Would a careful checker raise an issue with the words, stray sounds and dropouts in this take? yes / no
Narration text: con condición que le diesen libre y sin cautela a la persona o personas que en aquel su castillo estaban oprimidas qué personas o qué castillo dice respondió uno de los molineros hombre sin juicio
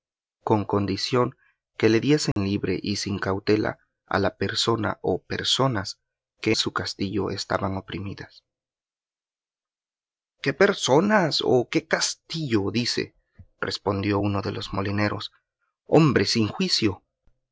yes